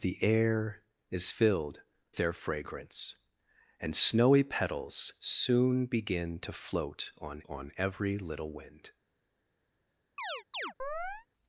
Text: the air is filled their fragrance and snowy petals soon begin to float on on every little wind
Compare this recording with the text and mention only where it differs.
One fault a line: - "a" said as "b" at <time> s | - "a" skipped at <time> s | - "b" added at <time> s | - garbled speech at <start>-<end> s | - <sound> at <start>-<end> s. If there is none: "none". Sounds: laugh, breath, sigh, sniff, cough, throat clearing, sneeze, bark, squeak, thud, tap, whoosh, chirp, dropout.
- chirp at 10.2-11.3 s